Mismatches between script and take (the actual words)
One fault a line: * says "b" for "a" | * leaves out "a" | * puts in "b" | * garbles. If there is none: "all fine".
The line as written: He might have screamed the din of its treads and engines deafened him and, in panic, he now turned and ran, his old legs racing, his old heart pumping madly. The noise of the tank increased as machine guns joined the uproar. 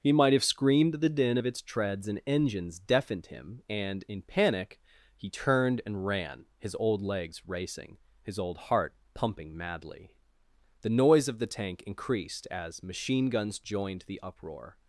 * leaves out "now"